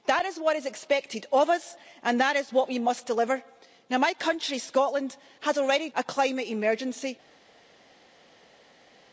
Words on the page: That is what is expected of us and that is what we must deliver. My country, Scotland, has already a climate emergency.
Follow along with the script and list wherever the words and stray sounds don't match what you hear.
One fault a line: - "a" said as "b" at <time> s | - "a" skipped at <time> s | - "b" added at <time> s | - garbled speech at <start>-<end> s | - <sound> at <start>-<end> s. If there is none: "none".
none